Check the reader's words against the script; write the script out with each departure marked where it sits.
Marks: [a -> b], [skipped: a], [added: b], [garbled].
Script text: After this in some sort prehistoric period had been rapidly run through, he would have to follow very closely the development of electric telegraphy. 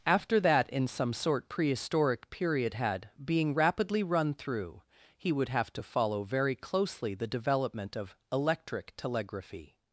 After [this -> that] in some sort prehistoric period had [been -> being] rapidly run through, he would have to follow very closely the development of electric telegraphy.